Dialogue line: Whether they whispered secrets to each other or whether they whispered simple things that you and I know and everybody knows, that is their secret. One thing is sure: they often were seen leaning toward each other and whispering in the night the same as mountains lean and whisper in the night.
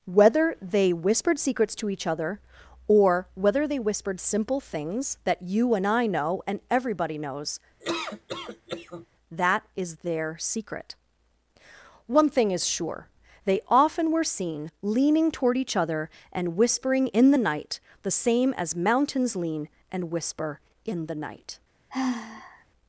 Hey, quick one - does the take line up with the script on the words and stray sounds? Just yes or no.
no